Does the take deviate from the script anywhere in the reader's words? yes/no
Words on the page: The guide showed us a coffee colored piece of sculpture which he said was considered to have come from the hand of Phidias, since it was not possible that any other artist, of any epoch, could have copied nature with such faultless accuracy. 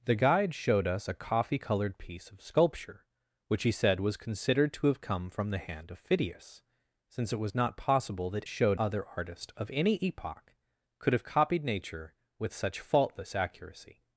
yes